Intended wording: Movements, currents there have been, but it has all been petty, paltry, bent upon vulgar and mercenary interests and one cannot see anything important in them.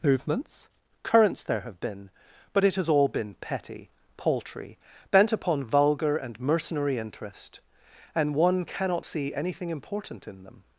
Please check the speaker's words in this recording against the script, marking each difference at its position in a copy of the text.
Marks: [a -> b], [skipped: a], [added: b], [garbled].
Movements, currents there have been, but it has all been petty, paltry, bent upon vulgar and mercenary [interests -> interest] and one cannot see anything important in them.